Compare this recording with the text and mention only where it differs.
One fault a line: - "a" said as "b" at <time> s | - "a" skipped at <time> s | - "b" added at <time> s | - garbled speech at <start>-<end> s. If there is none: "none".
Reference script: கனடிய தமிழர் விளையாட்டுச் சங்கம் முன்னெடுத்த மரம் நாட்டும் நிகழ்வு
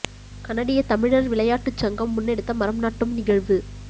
none